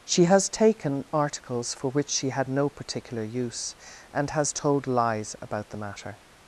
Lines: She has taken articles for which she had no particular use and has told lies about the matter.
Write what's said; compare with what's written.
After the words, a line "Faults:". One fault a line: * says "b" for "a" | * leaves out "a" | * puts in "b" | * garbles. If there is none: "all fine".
She has taken articles for which she had no particular use and has told lies about the matter.
Faults:
all fine